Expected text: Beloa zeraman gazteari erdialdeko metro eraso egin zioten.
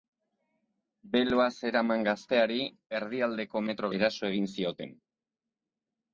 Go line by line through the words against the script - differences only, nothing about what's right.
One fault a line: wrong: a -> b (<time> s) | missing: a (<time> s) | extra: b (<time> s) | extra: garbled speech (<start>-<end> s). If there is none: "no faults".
no faults